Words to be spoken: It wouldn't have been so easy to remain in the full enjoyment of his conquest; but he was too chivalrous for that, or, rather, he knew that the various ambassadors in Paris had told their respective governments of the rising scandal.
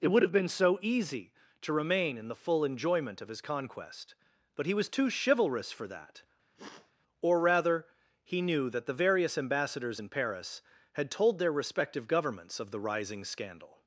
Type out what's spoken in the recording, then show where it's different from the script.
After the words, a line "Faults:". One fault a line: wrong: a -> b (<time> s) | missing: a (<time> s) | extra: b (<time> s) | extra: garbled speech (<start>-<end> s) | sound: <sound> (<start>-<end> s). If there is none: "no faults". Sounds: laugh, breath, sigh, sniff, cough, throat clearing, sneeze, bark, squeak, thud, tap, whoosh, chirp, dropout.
It would have been so easy to remain in the full enjoyment of his conquest; but he was too chivalrous for that, or, rather, he knew that the various ambassadors in Paris had told their respective governments of the rising scandal.
Faults:
wrong: wouldn't -> would (0.1 s)
sound: sniff (6.6-6.9 s)